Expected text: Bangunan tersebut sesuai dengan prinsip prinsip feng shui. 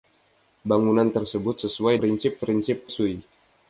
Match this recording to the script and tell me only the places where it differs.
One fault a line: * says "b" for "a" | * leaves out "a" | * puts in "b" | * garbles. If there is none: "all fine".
* leaves out "dengan"
* leaves out "feng"